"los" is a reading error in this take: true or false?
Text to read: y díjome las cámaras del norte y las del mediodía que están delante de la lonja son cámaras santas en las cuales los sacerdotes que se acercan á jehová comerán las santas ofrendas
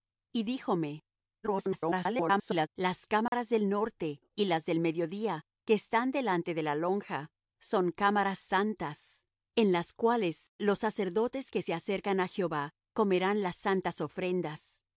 false